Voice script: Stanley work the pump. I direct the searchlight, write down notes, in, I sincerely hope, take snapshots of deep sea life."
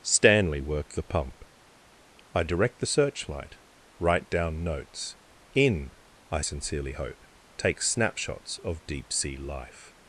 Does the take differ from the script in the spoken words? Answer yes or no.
no